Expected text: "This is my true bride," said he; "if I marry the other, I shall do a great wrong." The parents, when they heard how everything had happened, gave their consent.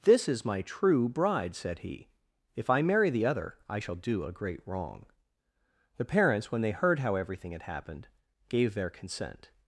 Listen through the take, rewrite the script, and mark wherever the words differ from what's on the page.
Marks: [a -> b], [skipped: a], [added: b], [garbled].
"This is my true bride," said he; "if I marry the other, I shall do a great wrong." The parents, when they heard how everything had happened, gave their consent.